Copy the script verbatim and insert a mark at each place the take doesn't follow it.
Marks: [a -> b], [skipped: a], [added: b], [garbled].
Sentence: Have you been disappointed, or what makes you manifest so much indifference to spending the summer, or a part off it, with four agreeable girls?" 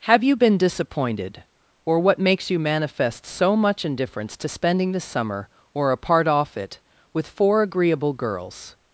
Have you been disappointed, or what makes you manifest so much indifference to spending the summer, or a part off it, with four agreeable girls?"